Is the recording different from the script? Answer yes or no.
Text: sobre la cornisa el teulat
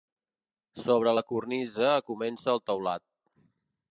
yes